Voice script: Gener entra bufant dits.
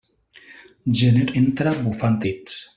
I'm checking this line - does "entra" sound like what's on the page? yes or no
yes